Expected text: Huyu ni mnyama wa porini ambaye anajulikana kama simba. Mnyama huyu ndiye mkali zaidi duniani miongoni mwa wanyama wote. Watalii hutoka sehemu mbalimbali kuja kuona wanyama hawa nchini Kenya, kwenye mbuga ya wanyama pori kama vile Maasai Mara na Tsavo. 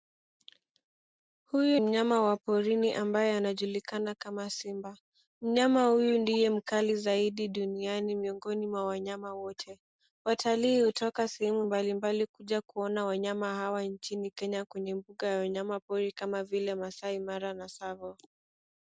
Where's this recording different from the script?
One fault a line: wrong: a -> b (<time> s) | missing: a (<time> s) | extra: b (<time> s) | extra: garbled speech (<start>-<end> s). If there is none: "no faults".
missing: ni (1.8 s)